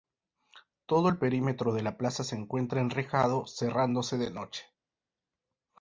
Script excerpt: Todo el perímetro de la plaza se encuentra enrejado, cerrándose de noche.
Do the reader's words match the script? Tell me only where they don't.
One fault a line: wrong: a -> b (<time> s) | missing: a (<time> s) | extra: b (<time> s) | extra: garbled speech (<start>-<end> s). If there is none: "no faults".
no faults